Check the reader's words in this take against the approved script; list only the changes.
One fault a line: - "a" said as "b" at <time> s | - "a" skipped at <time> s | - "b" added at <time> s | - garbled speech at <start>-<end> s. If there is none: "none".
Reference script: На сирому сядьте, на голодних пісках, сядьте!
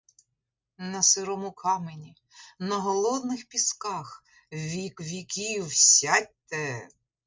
- "сядьте" said as "камені" at 1.5 s
- "вік віків" added at 4.5 s